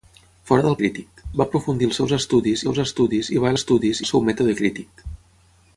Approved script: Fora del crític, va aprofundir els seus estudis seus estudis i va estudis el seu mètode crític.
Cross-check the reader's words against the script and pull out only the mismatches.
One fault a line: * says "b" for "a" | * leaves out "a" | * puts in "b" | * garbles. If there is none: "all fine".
all fine